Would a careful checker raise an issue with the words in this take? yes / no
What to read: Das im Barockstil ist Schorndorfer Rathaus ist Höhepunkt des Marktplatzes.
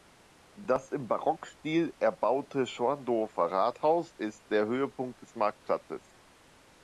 yes